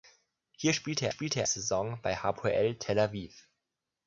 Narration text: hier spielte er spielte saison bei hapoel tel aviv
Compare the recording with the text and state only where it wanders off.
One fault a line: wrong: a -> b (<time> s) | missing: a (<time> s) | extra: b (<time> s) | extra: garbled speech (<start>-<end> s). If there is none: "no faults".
no faults